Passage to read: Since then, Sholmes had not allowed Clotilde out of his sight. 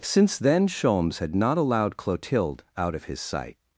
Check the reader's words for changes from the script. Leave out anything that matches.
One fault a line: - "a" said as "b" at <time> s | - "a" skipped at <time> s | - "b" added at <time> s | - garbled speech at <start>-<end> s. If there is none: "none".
none